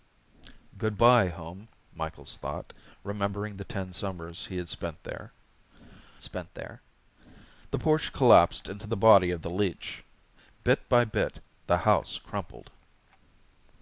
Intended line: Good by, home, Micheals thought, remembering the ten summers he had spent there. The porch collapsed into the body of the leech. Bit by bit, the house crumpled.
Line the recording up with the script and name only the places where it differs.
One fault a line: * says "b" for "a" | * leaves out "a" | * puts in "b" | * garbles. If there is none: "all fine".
* puts in "spent there"